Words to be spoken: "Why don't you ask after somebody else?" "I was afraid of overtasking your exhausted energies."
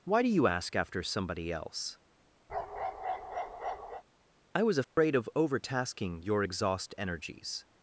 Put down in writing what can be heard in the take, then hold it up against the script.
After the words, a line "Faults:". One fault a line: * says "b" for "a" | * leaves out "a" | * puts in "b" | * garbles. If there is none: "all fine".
"Why do you ask after somebody else?" "I was afraid of overtasking your exhaust energies."
Faults:
* says "do" for "don't"
* says "exhaust" for "exhausted"